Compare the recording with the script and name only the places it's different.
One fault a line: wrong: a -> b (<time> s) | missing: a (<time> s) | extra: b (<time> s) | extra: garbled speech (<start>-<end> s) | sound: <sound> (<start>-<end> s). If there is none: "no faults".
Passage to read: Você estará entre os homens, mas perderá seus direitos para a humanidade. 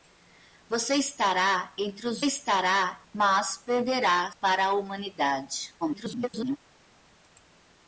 wrong: homens -> estará (2.2 s)
missing: seus direitos (4.3 s)
extra: garbled speech (5.8-6.6 s)